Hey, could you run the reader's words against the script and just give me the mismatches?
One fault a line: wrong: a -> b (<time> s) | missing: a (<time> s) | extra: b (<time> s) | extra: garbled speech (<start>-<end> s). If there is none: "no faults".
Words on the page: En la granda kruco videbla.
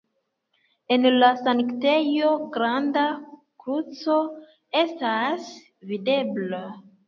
extra: sanktejo (1.4 s)
extra: estas (4.9 s)